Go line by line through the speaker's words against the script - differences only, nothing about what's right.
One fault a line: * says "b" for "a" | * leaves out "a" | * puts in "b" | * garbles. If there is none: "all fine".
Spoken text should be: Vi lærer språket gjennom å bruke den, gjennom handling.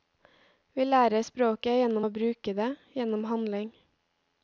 * says "det" for "den"